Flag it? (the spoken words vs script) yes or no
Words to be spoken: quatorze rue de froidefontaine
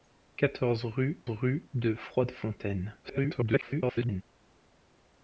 yes